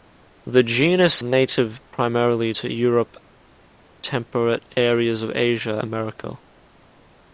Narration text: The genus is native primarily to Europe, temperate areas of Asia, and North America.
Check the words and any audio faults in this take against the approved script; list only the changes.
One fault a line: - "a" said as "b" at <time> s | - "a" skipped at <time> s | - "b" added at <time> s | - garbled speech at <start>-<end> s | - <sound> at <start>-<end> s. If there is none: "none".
- "is" skipped at 1.2 s
- "and North" skipped at 5.8 s